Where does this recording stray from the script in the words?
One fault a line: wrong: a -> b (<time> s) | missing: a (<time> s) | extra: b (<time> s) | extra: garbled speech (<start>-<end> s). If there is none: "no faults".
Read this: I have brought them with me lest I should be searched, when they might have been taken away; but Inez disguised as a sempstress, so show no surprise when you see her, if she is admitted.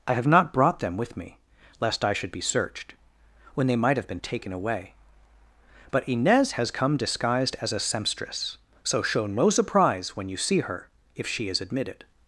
extra: not (0.3 s)
extra: has come (6.5 s)